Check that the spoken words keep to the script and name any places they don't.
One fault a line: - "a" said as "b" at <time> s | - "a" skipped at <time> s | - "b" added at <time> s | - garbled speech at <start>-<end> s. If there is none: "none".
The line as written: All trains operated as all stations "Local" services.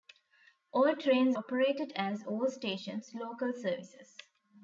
none